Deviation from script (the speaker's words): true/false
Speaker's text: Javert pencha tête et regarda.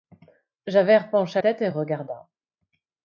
false